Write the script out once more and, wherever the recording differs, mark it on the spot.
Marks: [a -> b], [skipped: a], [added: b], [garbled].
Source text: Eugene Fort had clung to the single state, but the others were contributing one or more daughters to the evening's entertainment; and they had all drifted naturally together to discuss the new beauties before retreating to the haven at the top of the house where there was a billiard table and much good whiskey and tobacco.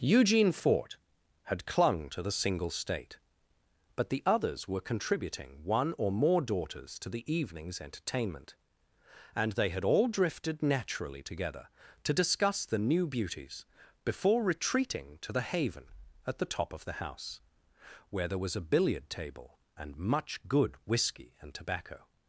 Eugene Fort had clung to the single state, but the others were contributing one or more daughters to the evening's entertainment; and they had all drifted naturally together to discuss the new beauties before retreating to the haven at the top of the house where there was a billiard table and much good whiskey and tobacco.